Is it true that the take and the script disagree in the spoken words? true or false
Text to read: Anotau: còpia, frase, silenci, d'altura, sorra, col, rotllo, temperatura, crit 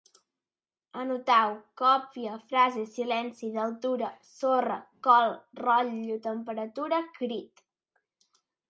false